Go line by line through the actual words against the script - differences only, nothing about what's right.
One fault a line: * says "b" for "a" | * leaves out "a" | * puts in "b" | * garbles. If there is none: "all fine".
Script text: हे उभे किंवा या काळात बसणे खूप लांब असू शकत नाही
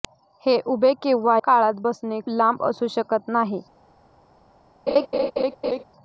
* leaves out "या"
* leaves out "खूप"